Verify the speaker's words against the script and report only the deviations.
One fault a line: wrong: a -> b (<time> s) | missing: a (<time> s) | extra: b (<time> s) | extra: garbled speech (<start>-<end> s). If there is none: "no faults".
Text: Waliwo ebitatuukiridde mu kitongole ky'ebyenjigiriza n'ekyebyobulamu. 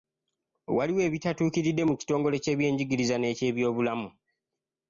no faults